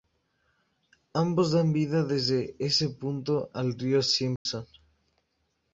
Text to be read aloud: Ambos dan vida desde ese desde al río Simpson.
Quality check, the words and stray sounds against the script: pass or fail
fail